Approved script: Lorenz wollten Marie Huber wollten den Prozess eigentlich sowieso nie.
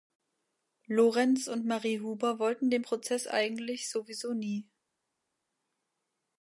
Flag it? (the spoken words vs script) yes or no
yes